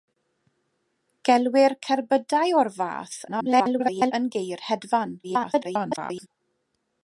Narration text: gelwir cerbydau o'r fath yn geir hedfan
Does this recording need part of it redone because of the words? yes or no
yes